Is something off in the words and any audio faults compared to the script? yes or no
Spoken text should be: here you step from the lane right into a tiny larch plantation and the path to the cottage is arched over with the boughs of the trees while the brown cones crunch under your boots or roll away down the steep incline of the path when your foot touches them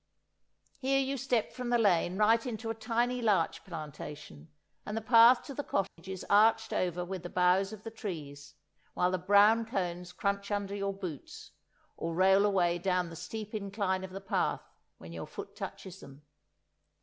yes